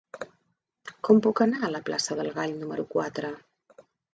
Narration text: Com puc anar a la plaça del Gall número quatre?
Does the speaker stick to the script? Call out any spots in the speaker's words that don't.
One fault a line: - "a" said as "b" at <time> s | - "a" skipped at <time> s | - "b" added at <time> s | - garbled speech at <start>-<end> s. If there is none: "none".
none